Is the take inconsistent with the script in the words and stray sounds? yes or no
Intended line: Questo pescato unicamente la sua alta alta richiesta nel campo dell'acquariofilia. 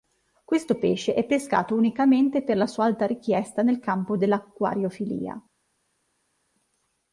yes